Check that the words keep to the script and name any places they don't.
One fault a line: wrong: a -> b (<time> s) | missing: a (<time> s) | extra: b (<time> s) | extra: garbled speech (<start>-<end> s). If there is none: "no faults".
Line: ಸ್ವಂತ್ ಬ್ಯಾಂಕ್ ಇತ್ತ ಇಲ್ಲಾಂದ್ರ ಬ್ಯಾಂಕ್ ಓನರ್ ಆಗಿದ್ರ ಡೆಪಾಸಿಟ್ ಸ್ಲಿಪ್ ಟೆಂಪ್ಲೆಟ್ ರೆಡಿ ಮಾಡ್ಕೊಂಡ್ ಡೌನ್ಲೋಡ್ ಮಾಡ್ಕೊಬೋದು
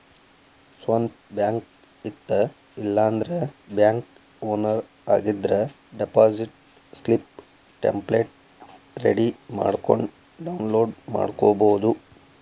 no faults